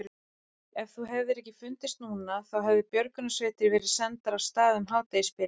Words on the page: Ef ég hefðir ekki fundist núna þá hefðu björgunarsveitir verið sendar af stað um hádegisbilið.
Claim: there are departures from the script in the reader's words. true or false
true